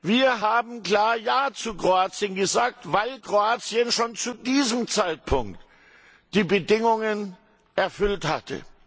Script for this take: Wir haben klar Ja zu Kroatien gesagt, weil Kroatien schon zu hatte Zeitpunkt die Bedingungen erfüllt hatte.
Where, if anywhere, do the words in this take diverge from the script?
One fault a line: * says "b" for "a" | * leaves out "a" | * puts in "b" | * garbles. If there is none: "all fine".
* says "diesem" for "hatte"